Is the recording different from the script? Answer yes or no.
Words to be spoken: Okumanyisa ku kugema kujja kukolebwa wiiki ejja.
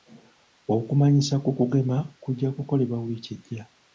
no